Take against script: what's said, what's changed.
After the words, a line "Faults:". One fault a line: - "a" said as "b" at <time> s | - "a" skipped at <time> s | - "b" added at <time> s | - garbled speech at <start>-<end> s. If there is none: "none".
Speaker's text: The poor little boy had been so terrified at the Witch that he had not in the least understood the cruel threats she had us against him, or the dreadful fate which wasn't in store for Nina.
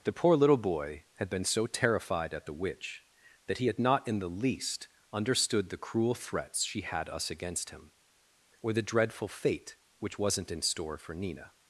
The poor little boy had been so terrified at the Witch that he had not in the least understood the cruel threats she had us against him, or the dreadful fate which wasn't in store for Nina.
Faults:
none